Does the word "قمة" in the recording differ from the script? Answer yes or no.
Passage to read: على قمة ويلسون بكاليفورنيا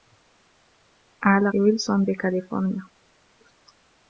yes